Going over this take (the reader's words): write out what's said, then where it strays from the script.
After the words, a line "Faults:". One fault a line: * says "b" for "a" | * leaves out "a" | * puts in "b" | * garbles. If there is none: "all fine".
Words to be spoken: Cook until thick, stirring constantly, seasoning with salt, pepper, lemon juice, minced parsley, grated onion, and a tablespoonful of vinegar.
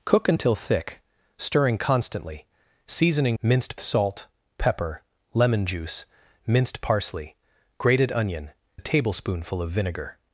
Cook until thick, stirring constantly, seasoning minced salt, pepper, lemon juice, minced parsley, grated onion, a tablespoonful of vinegar.
Faults:
* says "minced" for "with"
* leaves out "and"